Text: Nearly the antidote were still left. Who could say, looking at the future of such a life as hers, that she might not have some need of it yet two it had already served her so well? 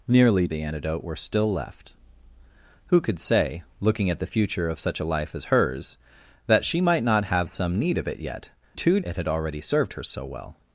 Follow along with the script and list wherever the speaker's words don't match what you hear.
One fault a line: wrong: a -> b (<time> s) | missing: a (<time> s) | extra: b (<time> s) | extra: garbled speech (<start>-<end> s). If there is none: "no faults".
no faults